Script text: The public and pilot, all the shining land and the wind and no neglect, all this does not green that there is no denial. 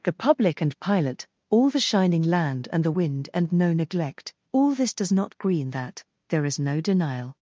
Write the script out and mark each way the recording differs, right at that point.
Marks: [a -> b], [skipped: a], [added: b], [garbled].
The public and pilot, all the shining land and the wind and no neglect, all this does not green that there is no denial.